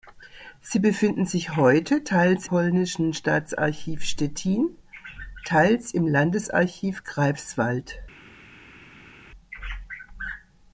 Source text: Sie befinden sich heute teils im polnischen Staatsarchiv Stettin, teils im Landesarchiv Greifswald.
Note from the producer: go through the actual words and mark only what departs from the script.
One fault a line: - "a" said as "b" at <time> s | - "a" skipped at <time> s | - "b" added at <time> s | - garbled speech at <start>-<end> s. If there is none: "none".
- "im" skipped at 2.5 s